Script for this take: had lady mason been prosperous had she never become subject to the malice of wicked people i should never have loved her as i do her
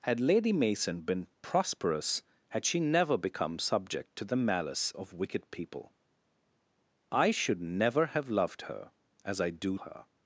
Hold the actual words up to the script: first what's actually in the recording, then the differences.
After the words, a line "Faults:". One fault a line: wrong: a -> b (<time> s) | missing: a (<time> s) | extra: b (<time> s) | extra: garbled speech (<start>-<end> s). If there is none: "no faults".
had lady mason been prosperous had she never become subject to the malice of wicked people i should never have loved her as i do her
Faults:
no faults